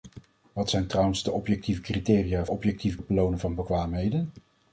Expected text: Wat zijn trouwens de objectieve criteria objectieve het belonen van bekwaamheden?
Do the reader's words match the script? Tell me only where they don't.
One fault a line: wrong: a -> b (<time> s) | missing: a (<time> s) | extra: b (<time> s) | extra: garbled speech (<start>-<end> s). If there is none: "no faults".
no faults